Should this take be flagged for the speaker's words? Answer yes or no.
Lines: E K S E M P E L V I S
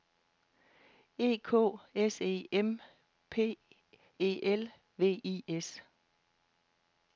no